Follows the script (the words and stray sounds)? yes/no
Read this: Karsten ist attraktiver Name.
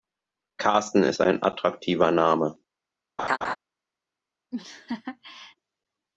no